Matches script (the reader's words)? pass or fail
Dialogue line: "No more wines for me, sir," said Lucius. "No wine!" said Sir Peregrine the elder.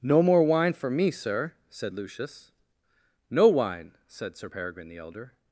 fail